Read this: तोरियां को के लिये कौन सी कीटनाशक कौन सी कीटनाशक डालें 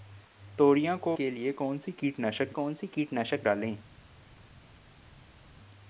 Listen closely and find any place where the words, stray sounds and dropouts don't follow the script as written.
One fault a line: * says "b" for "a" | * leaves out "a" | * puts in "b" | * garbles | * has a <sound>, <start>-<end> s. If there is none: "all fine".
all fine